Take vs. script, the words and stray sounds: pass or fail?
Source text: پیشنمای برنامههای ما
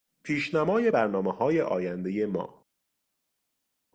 fail